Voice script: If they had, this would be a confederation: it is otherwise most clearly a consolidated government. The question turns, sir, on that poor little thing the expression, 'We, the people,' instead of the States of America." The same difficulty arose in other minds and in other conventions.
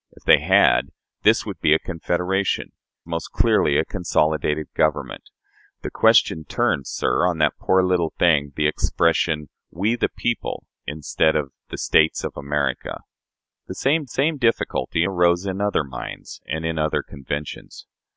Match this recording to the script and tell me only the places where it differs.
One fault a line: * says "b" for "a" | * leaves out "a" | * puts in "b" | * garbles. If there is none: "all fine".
* leaves out "it is otherwise"
* puts in "same"